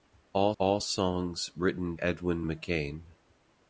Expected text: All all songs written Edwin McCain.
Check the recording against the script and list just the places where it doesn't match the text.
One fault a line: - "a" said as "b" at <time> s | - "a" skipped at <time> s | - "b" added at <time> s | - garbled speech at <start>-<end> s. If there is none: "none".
none